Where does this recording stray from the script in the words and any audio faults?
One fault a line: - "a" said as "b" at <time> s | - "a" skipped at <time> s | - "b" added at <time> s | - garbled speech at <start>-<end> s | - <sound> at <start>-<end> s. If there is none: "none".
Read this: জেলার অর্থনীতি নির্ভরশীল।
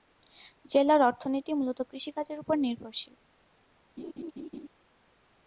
- "মূলত কৃষিকাজের উপর" added at 1.5 s
- laugh at 4.0-4.7 s